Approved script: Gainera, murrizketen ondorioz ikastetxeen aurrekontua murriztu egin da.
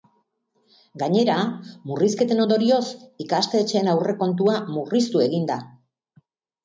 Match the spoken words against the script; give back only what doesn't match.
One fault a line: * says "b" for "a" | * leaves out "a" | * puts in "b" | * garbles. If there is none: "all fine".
all fine